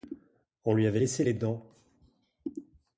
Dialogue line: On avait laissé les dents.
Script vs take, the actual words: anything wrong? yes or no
yes